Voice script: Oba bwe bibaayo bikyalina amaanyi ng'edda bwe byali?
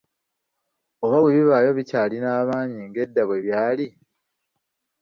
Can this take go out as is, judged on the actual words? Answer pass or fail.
pass